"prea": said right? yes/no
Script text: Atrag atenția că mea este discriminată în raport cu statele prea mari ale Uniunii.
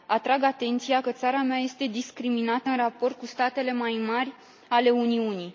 no